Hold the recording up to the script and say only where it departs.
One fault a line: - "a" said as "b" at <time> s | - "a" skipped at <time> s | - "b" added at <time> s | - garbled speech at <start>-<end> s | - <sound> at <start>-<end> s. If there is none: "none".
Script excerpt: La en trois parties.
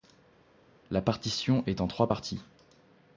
- "partition est" added at 1.0 s